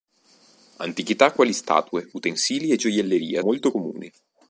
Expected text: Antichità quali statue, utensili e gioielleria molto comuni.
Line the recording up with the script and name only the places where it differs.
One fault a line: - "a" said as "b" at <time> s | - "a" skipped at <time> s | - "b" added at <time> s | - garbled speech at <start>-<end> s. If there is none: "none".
none